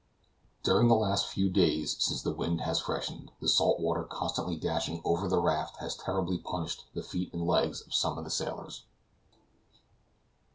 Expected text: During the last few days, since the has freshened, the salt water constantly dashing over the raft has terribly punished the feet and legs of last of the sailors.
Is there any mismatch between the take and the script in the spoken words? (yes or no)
yes